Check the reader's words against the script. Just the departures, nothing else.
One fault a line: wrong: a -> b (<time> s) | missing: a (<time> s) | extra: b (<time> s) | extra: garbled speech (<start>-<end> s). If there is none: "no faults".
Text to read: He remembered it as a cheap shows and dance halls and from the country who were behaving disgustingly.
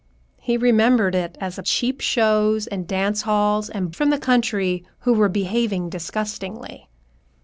no faults